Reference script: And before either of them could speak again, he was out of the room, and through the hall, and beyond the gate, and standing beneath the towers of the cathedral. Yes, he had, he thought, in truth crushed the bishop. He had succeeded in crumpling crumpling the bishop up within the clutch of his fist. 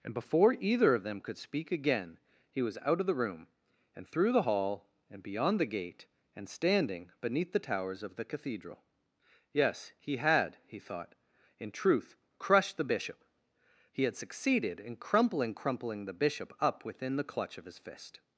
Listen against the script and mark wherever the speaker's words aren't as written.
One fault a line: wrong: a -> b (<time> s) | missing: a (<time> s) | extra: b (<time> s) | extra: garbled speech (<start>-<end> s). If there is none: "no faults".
no faults